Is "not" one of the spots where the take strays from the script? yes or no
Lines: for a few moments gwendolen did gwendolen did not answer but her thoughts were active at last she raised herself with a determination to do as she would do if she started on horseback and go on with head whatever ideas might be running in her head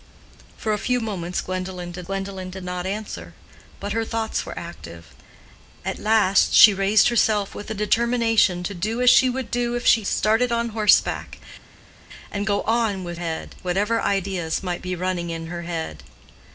no